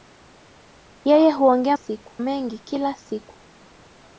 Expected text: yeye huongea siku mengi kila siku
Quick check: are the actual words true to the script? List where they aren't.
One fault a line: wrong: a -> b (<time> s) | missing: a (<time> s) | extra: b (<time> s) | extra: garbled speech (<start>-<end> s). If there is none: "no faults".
no faults